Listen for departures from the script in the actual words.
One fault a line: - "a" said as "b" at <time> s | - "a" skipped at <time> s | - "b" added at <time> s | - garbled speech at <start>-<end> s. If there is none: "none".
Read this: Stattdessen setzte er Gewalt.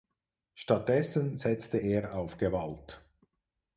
- "auf" added at 2.1 s